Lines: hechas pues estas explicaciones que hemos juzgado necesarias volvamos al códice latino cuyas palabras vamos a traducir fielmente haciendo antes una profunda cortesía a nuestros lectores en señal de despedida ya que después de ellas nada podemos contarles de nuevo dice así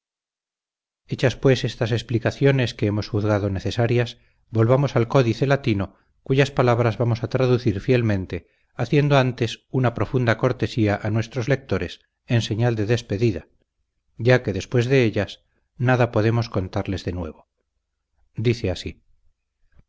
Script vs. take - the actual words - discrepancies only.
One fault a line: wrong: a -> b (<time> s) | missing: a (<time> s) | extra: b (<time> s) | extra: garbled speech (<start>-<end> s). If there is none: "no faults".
no faults